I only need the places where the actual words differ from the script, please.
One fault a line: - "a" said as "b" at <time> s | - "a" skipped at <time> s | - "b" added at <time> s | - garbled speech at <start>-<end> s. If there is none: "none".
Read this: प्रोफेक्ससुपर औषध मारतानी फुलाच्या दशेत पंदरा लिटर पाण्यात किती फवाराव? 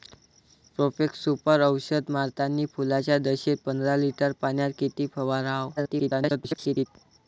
- garbled speech at 5.8-6.9 s